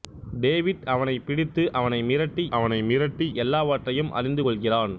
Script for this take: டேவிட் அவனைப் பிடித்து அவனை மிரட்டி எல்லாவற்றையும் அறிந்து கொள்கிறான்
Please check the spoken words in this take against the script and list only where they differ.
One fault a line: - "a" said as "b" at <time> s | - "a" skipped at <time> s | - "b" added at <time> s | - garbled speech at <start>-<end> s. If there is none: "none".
- "அவனை மிரட்டி" added at 2.5 s